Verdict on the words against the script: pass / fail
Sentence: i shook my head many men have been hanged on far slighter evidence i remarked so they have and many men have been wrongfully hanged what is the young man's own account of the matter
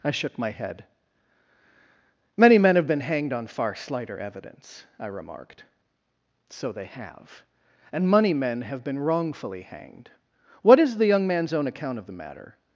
fail